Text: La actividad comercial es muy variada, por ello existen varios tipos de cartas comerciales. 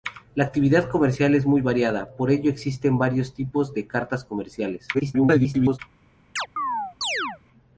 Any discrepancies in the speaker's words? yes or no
yes